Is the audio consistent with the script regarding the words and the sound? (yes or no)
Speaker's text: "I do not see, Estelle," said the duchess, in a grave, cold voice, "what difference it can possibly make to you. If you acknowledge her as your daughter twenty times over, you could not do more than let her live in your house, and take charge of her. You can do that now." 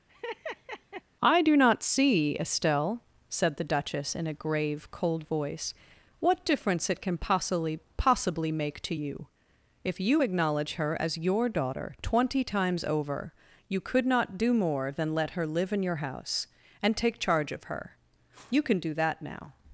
no